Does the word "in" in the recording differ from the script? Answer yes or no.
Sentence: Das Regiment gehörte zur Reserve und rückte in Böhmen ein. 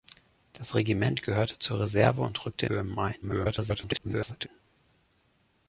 yes